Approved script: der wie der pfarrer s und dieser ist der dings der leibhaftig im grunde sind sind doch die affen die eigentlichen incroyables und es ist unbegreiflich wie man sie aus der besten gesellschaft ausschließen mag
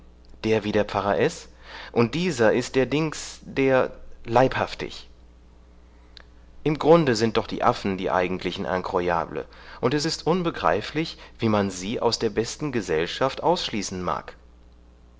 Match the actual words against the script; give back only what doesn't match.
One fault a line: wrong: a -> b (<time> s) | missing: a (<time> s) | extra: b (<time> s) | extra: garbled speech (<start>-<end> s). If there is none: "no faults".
missing: sind (7.4 s)